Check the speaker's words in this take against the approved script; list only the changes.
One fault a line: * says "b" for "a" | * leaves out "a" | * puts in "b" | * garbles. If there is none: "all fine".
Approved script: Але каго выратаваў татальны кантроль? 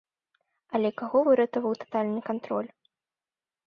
all fine